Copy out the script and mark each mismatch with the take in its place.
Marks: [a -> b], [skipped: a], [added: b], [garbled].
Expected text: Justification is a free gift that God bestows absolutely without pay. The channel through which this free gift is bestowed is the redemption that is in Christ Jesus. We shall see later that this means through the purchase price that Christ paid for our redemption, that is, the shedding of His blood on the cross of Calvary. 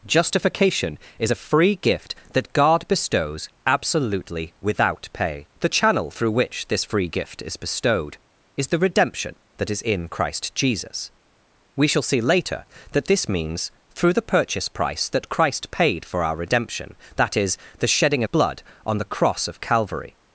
Justification is a free gift that God bestows absolutely without pay. The channel through which this free gift is bestowed is the redemption that is in Christ Jesus. We shall see later that this means through the purchase price that Christ paid for our redemption, that is, the shedding [skipped: of His] blood on the cross of Calvary.